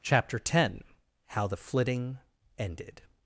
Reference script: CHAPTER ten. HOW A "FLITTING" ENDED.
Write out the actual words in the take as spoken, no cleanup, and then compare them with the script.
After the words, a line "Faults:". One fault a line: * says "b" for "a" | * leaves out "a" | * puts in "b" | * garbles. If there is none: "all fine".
CHAPTER ten. HOW THE "FLITTING" ENDED.
Faults:
* says "THE" for "A"